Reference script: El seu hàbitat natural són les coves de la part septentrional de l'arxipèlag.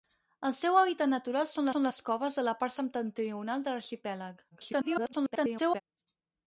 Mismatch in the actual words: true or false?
true